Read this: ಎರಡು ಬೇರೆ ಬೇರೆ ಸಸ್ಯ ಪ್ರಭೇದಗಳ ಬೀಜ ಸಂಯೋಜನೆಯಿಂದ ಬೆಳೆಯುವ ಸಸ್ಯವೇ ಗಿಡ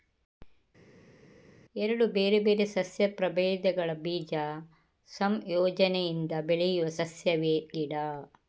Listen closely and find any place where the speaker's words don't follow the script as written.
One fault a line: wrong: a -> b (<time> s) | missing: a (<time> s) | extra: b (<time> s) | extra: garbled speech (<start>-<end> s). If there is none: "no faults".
no faults